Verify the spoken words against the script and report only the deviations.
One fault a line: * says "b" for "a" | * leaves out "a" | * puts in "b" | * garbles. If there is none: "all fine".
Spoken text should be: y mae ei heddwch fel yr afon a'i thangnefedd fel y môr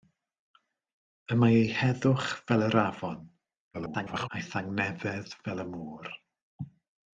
* garbles